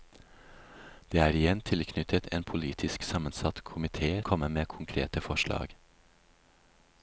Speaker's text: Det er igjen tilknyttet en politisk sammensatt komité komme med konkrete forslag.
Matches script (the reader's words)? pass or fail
pass